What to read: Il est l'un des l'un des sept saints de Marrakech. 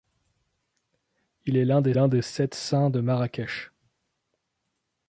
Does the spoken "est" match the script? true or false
true